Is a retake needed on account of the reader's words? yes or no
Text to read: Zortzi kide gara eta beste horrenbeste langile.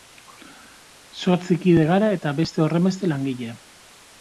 no